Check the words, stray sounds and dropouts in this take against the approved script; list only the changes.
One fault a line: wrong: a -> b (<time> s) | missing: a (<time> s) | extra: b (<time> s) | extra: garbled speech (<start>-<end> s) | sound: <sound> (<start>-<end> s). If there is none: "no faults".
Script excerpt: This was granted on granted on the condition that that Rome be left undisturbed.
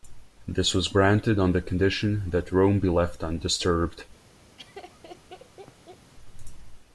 missing: granted on (1.5 s)
missing: that (2.5 s)
sound: laugh (4.6-6.1 s)